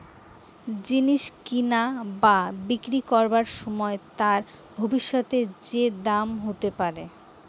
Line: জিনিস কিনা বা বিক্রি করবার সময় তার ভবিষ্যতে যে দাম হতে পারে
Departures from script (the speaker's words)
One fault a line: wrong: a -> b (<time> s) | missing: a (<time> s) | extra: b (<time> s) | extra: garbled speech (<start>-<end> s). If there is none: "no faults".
no faults